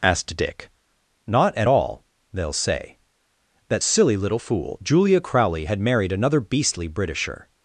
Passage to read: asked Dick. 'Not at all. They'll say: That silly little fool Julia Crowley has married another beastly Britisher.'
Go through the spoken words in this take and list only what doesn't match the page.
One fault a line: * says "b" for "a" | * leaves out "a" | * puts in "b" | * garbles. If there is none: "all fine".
* says "had" for "has"